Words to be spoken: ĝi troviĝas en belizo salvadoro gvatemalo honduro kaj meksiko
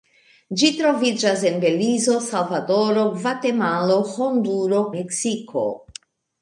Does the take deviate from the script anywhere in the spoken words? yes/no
yes